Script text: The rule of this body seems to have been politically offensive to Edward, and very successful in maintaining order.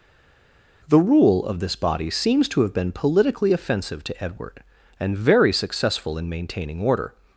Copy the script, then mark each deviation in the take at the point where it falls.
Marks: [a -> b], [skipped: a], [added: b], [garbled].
The rule of this body seems to have been politically offensive to Edward, and very successful in maintaining order.